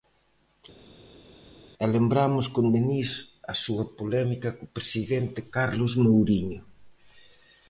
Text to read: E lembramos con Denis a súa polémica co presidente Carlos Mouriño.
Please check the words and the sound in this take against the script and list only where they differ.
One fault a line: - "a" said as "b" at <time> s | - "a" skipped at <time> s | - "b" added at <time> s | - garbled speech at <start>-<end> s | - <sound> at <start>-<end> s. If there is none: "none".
none